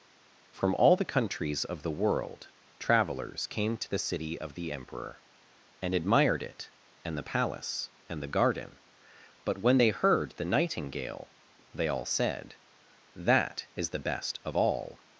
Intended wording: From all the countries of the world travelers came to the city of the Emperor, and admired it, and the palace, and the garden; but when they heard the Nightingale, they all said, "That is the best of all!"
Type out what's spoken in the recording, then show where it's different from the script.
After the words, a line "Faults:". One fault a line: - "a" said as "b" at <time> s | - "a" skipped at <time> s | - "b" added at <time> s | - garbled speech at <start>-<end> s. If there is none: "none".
From all the countries of the world travelers came to the city of the Emperor, and admired it, and the palace, and the garden; but when they heard the Nightingale, they all said, "That is the best of all!"
Faults:
none